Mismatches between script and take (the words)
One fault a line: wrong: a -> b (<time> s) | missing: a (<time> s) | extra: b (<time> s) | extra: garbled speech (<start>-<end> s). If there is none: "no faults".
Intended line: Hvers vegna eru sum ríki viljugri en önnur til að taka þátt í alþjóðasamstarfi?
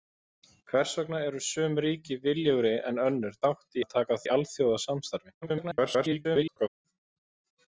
wrong: til -> þátt (3.4 s)
missing: þátt (4.2 s)
extra: garbled speech (5.4-6.7 s)